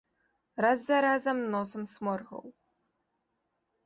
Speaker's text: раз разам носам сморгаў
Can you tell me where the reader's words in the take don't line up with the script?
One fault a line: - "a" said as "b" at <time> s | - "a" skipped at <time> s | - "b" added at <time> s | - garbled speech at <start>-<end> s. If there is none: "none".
- "за" added at 0.8 s